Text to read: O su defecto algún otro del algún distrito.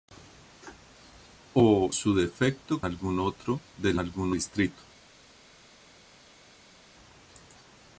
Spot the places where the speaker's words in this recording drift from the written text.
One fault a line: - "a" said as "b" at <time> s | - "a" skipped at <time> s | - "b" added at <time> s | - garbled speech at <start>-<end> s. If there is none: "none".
none